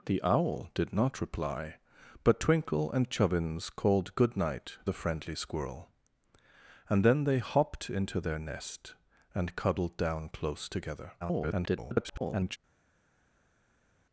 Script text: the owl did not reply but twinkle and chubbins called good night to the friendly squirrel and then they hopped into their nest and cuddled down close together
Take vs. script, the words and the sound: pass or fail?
fail